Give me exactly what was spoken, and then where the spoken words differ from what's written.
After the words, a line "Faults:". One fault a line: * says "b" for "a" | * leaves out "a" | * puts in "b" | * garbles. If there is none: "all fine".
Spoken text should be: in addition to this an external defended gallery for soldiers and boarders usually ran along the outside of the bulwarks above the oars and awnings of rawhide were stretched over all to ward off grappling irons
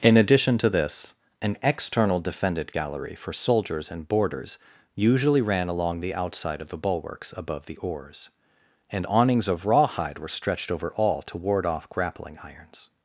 in addition to this an external defended gallery for soldiers and boarders usually ran along the outside of the bulwarks above the oars and awnings of rawhide were stretched over all to ward off grappling irons
Faults:
all fine